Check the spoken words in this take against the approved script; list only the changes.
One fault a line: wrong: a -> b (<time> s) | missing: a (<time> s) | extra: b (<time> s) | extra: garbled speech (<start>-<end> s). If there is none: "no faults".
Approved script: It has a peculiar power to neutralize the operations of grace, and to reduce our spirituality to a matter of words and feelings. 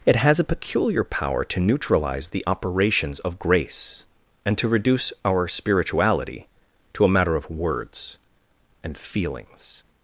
no faults